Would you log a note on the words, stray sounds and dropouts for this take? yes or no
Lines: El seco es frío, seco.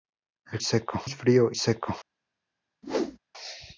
yes